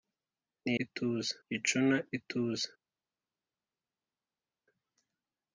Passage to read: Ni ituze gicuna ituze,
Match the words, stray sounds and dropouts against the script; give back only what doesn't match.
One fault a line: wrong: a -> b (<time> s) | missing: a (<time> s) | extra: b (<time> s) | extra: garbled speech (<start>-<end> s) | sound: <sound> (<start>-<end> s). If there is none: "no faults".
no faults